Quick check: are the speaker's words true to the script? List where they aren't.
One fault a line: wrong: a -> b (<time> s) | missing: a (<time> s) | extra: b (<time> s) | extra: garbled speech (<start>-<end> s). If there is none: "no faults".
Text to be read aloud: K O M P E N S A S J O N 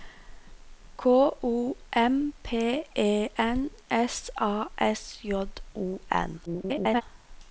extra: garbled speech (6.5-7.0 s)